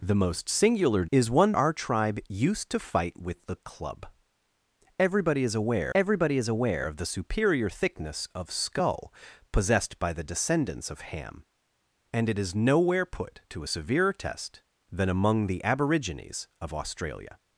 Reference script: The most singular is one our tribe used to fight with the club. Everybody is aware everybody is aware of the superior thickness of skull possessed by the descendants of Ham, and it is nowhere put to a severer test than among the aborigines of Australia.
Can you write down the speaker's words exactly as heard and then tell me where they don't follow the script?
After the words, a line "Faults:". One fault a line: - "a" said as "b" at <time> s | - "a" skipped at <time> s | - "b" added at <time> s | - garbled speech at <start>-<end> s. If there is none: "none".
The most singular is one our tribe used to fight with the club. Everybody is aware everybody is aware of the superior thickness of skull possessed by the descendants of Ham, and it is nowhere put to a severer test than among the aborigines of Australia.
Faults:
none